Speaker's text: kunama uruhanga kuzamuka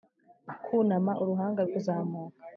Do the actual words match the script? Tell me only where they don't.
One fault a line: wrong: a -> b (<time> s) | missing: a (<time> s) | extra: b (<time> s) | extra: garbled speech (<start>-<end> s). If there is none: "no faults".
no faults